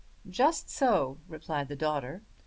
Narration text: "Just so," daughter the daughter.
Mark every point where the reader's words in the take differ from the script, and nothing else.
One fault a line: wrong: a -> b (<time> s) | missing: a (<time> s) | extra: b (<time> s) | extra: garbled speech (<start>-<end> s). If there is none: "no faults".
wrong: daughter -> replied (1.3 s)